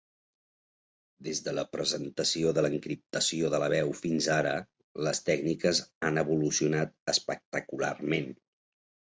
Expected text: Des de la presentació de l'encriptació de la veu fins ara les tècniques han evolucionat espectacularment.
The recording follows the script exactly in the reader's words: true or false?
true